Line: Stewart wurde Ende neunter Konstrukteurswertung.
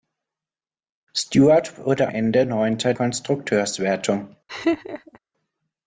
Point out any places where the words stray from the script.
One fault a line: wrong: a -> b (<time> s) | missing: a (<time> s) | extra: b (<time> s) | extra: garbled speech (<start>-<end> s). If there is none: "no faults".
no faults